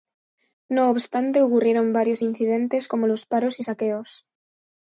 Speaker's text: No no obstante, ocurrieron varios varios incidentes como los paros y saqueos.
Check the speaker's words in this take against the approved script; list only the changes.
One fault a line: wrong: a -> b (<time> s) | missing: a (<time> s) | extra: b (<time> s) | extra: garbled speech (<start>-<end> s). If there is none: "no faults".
missing: no (0.9 s)
missing: varios (2.2 s)